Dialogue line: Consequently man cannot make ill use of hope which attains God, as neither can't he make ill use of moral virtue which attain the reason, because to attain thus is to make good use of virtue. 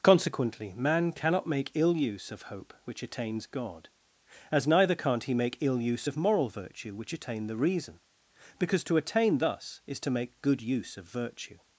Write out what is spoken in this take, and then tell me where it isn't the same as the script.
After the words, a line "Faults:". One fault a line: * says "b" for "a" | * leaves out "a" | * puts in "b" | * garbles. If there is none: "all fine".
Consequently man cannot make ill use of hope which attains God, as neither can't he make ill use of moral virtue which attain the reason, because to attain thus is to make good use of virtue.
Faults:
all fine